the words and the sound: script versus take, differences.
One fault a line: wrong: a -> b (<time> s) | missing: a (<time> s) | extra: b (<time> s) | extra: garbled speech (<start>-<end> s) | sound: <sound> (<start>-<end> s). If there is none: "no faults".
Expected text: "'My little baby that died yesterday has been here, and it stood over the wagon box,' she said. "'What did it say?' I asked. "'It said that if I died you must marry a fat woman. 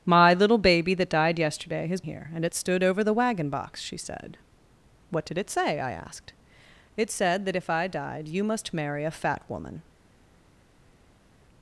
missing: been (2.0 s)